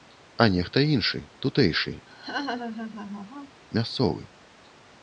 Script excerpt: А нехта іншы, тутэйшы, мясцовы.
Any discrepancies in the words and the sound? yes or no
yes